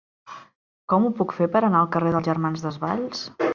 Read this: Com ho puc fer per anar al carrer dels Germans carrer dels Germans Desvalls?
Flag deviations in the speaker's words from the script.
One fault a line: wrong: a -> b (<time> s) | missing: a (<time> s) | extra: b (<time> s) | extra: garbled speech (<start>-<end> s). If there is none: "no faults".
missing: carrer dels Germans (2.7 s)